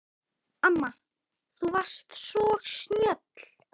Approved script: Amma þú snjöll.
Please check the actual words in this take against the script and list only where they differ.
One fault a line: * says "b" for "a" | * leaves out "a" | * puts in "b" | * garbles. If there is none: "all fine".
* puts in "varst svo"